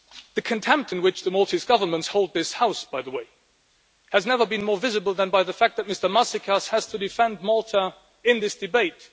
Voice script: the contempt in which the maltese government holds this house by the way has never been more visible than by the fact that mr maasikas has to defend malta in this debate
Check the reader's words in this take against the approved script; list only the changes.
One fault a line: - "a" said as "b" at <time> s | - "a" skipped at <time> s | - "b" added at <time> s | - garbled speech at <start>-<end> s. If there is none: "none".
none